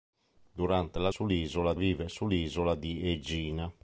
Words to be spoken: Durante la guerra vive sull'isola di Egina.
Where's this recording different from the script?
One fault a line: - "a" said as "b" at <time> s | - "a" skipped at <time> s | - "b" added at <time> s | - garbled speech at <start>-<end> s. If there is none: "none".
- "guerra" said as "sull'isola" at 1.1 s